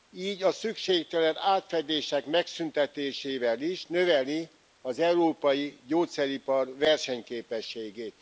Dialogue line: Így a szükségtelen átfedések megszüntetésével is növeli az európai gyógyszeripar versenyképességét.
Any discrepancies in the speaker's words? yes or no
no